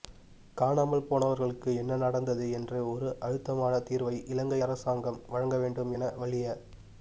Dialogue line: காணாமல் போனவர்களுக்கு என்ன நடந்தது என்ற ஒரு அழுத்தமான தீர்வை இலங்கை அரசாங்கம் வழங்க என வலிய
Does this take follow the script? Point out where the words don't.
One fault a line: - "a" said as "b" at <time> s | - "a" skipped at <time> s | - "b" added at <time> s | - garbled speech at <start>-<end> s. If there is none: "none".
- "வேண்டும்" added at 5.6 s